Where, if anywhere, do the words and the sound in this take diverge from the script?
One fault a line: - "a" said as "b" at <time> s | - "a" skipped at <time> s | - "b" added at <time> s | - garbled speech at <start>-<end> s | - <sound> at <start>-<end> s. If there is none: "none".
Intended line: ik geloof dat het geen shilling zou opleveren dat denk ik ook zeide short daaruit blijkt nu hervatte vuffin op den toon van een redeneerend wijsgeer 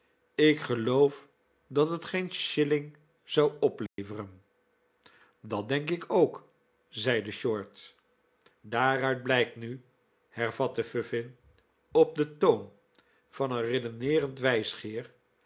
- dropout at 3.9-4.0 s